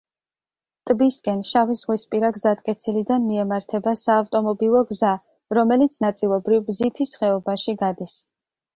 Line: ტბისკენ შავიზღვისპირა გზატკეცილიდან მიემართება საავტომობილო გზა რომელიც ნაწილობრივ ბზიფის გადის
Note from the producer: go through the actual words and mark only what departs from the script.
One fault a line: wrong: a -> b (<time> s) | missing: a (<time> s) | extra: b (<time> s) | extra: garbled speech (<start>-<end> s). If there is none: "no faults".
extra: ხეობაში (7.2 s)